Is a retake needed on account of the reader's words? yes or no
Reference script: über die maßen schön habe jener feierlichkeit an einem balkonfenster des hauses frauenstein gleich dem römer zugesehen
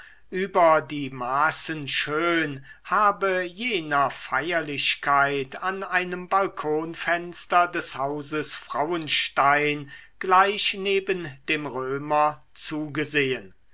yes